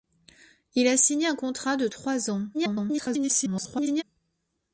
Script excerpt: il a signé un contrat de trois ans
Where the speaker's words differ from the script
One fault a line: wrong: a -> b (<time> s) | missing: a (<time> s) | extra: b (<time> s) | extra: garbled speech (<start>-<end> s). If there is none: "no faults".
extra: garbled speech (2.5-4.0 s)